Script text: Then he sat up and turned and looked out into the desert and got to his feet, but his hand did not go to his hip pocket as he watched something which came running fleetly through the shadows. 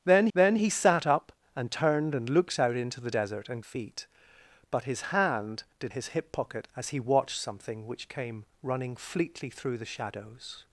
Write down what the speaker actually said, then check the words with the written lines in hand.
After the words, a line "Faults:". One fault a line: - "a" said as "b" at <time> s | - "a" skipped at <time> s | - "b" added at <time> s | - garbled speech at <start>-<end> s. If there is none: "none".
Then then he sat up and turned and looked out into the desert and feet, but his hand did his hip pocket as he watched something which came running fleetly through the shadows.
Faults:
- "then" added at 0.3 s
- "got to his" skipped at 3.6 s
- "not go to" skipped at 5.9 s